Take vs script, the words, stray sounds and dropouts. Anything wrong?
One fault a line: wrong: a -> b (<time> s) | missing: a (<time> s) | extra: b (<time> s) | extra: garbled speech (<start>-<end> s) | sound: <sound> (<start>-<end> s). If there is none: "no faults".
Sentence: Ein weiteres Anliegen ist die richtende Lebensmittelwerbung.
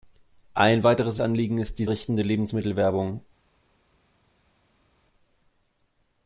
no faults